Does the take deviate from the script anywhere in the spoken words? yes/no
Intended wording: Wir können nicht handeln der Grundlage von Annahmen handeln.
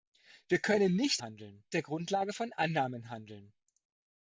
no